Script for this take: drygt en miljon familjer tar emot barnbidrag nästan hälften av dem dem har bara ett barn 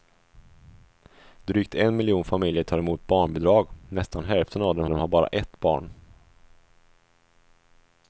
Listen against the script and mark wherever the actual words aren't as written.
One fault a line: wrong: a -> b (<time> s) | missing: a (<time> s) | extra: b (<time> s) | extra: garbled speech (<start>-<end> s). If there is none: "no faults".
no faults